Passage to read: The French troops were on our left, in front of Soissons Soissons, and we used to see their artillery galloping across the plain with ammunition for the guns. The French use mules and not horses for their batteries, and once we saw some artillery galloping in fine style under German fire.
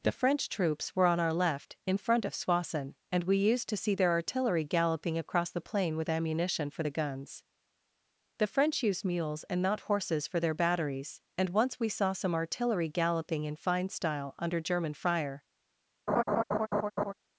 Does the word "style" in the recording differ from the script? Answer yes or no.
no